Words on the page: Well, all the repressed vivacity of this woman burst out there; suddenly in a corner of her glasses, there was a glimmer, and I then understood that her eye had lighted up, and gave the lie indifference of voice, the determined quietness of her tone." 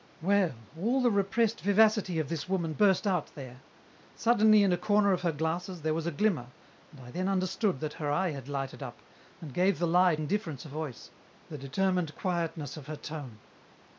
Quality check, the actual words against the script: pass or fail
pass